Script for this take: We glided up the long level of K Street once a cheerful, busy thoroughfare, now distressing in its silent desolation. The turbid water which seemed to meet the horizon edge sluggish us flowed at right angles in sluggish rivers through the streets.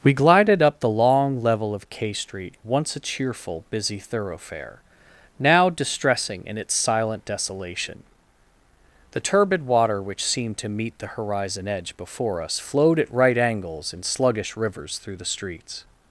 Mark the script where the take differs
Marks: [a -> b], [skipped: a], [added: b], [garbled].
We glided up the long level of K Street once a cheerful, busy thoroughfare, now distressing in its silent desolation. The turbid water which seemed to meet the horizon edge [sluggish -> before] us flowed at right angles in sluggish rivers through the streets.